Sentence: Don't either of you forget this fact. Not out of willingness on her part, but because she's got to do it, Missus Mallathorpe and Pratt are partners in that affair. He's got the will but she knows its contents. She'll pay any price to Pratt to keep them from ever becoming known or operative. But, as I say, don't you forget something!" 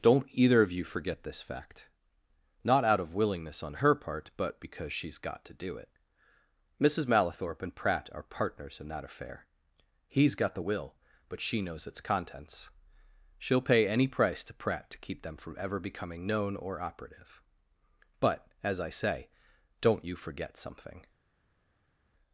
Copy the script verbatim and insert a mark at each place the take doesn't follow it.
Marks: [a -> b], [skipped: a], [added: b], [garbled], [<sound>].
Don't either of you forget this fact. Not out of willingness on her part, but because she's got to do it, Missus Mallathorpe and Pratt are partners in that affair. He's got the will but she knows its contents. She'll pay any price to Pratt to keep them from ever becoming known or operative. But, as I say, don't you forget something!"